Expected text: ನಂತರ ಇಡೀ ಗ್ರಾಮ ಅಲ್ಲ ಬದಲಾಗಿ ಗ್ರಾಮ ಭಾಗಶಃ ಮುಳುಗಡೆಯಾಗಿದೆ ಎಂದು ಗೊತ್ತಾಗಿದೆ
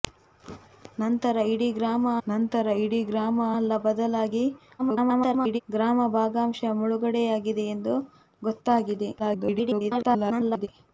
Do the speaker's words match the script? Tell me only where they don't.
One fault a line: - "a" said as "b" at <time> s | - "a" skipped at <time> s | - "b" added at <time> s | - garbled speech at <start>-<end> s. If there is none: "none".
- "ನಂತರ ಇಡೀ ಗ್ರಾಮ" added at 2.3 s
- garbled speech at 4.8-5.6 s
- garbled speech at 9.2-10.7 s